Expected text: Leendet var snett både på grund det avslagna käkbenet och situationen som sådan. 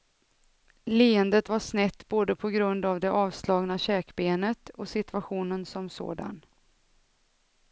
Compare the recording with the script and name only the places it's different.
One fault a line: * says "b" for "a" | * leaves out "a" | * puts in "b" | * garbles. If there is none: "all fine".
* puts in "av"